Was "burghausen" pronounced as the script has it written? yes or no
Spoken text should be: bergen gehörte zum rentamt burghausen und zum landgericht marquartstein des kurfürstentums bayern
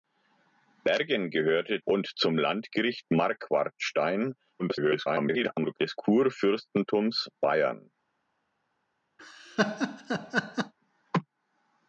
no